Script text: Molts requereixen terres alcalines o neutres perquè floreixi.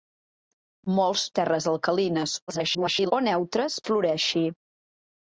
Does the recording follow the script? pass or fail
fail